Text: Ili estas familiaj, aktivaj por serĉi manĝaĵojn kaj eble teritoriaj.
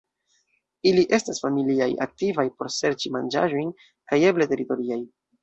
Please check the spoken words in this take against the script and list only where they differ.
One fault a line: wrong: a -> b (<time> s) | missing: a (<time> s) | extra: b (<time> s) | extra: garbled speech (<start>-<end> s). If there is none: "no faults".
no faults